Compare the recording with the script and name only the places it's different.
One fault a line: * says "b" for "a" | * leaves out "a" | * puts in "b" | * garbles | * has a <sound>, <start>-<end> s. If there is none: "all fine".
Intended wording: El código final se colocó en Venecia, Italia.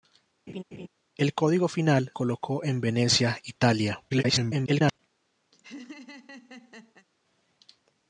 * has a laugh, 0.5-0.9 s
* leaves out "se"
* garbles
* has a laugh, 5.5-7.1 s